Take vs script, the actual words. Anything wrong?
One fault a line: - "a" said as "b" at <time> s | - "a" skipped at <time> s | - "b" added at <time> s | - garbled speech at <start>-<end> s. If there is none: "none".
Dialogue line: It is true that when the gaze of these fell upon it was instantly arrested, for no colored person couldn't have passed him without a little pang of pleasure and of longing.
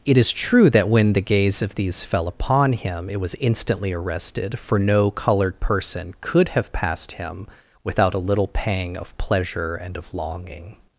- "him" added at 2.7 s
- "couldn't" said as "could" at 6.2 s